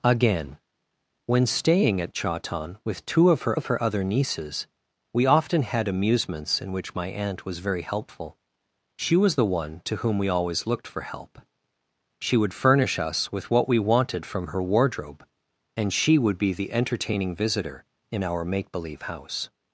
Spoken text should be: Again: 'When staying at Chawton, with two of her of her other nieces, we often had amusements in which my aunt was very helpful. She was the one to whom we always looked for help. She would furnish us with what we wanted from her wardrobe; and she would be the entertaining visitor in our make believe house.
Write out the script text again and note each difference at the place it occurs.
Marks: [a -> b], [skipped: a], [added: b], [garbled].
Again: 'When staying at Chawton, with two of her of her other nieces, we often had amusements in which my aunt was very helpful. She was the one to whom we always looked for help. She would furnish us with what we wanted from her wardrobe; and she would be the entertaining visitor in our make believe house.